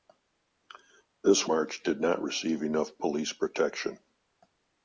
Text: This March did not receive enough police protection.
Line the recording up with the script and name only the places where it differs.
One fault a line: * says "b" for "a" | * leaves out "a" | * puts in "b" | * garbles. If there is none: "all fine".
all fine